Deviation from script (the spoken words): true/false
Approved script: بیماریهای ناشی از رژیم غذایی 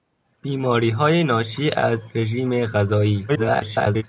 true